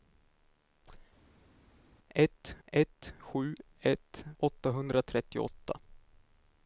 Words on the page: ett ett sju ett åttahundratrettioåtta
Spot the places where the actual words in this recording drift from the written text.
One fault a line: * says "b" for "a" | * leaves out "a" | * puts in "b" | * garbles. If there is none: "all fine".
all fine